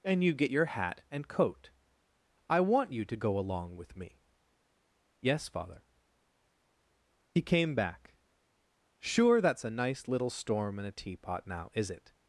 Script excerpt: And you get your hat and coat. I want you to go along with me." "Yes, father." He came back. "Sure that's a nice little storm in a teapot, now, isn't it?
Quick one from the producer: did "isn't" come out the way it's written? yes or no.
no